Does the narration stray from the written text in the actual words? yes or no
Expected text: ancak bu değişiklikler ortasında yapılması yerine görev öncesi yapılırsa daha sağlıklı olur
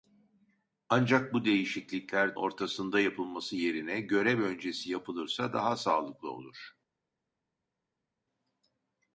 no